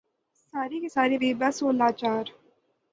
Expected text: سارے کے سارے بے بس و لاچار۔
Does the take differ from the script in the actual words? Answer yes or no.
no